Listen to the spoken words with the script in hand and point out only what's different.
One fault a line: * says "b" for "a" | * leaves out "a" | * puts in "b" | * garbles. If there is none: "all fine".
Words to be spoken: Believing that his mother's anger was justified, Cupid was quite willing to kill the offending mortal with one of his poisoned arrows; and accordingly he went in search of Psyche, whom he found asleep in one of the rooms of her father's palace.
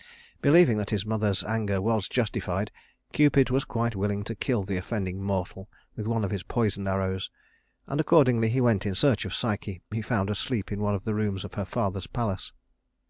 * leaves out "whom"